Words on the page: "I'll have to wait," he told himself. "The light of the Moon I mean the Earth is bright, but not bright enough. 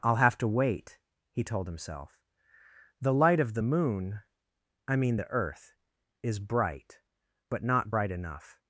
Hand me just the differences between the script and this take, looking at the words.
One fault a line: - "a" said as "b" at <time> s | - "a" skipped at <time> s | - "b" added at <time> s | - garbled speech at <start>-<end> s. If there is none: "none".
none